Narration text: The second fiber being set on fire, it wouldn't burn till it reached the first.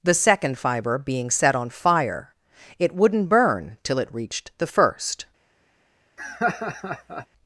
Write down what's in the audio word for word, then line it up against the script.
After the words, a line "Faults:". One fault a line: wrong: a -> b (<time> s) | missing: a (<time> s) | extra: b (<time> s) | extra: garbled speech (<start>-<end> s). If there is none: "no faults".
The second fiber being set on fire, it wouldn't burn till it reached the first.
Faults:
no faults